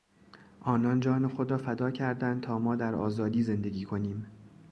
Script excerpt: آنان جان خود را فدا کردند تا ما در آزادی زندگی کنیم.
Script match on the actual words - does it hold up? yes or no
yes